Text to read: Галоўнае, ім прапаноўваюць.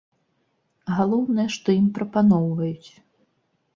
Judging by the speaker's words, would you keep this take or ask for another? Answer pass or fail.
fail